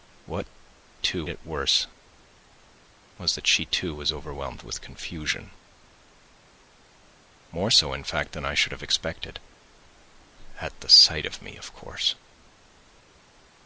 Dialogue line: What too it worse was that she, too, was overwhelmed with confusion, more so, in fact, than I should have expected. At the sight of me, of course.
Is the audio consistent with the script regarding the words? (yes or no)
yes